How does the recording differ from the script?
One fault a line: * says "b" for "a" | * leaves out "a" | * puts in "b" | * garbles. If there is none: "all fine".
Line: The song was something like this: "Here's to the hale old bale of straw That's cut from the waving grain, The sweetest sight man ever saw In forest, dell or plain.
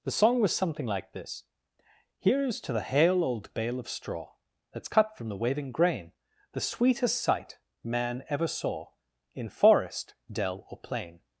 all fine